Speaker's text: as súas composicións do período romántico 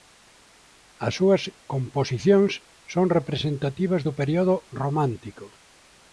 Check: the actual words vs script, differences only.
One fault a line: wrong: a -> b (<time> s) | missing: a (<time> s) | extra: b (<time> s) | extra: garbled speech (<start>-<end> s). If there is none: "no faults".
extra: son representativas (2.9 s)